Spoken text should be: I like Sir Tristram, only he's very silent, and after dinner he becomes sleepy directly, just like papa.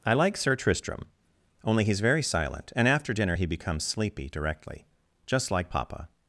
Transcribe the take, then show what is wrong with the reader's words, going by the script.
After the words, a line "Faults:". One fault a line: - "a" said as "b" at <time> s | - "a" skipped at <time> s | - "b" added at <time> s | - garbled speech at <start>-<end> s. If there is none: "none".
I like Sir Tristram, only he's very silent, and after dinner he becomes sleepy directly, just like papa.
Faults:
none